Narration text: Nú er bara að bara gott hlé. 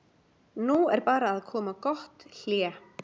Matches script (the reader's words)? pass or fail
fail